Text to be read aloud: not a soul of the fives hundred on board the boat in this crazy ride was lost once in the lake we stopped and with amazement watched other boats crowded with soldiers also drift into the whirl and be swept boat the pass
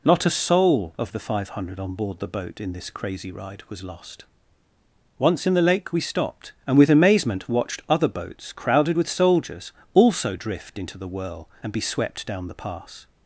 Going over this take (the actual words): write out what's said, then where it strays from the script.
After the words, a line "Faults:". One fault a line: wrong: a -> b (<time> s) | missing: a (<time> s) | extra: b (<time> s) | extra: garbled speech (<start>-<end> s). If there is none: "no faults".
not a soul of the five hundred on board the boat in this crazy ride was lost once in the lake we stopped and with amazement watched other boats crowded with soldiers also drift into the whirl and be swept down the pass
Faults:
wrong: fives -> five (1.2 s)
wrong: boat -> down (12.3 s)